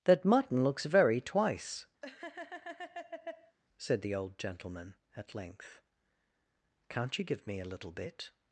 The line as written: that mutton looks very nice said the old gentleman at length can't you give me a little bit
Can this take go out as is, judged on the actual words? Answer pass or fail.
fail